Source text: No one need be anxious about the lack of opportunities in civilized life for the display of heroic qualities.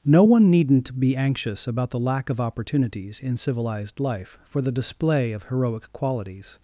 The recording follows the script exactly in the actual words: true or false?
false